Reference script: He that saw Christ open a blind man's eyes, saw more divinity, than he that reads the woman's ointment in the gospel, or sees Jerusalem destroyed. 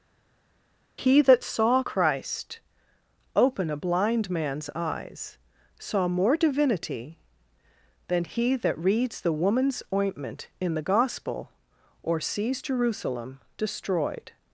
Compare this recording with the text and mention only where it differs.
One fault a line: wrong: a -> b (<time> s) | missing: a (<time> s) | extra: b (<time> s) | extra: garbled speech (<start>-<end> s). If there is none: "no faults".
no faults